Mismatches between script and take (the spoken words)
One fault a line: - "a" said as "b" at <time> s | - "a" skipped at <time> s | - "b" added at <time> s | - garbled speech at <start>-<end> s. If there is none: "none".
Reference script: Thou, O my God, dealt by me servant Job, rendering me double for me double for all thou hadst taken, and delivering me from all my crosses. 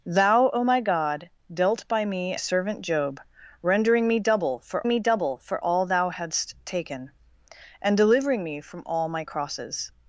none